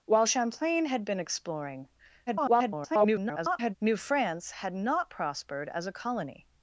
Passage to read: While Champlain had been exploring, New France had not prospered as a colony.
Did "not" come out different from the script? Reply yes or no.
no